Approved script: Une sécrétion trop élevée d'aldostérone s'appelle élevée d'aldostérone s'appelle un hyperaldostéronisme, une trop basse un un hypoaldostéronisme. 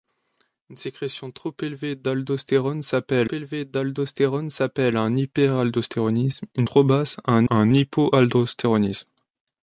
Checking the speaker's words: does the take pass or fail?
pass